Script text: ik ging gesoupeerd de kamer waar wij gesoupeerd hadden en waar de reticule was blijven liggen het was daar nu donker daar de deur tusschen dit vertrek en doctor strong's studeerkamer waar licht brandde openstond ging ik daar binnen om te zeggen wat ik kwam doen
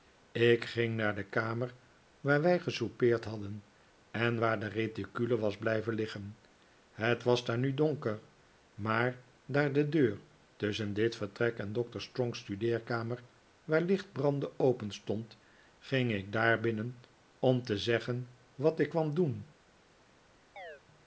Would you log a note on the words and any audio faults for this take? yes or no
yes